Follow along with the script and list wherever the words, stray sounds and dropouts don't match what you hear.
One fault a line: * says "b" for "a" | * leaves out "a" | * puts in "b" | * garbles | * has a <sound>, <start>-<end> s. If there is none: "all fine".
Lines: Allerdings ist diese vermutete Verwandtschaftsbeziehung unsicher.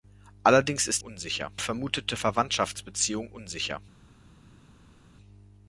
* says "unsicher" for "diese"